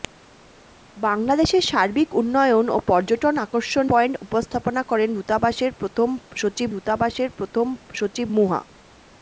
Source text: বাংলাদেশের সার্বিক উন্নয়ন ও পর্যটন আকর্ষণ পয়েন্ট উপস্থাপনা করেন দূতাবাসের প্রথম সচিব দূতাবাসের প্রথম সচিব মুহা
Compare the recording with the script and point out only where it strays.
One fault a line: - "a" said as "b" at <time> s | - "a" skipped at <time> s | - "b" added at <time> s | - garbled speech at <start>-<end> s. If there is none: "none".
none